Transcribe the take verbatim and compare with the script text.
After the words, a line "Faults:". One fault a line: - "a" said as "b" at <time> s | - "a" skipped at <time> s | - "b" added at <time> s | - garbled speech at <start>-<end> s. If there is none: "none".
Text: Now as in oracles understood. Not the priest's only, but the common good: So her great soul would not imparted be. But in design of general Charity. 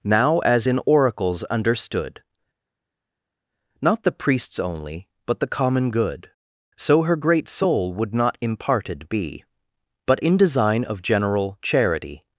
Now as in oracles understood. Not the priest's only, but the common good: So her great soul would not imparted be. But in design of general Charity.
Faults:
none